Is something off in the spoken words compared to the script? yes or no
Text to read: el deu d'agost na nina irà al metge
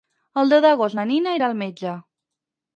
no